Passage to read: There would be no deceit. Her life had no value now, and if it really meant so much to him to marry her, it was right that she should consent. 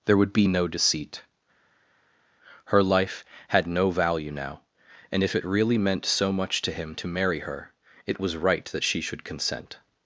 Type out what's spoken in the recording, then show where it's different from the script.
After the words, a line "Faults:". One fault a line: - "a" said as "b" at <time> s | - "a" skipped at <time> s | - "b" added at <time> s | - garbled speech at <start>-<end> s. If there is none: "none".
There would be no deceit. Her life had no value now, and if it really meant so much to him to marry her, it was right that she should consent.
Faults:
none